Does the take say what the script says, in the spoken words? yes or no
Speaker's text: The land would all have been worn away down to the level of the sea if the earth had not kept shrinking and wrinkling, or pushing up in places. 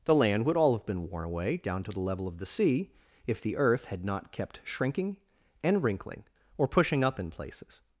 yes